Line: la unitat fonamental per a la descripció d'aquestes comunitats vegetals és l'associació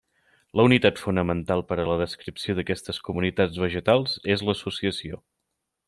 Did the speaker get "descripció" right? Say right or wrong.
right